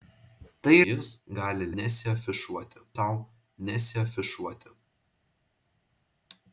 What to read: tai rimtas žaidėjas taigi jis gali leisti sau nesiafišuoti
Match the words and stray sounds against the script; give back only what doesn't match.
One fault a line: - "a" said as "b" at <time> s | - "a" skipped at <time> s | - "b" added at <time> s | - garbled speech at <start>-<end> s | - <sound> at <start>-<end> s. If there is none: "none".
- "rimtas žaidėjas taigi" skipped at 0.8 s
- "leisti" said as "nesiafišuoti" at 1.8 s